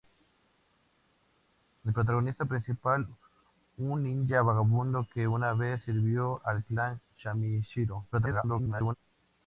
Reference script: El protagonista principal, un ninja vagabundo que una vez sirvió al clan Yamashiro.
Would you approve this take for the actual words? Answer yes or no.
no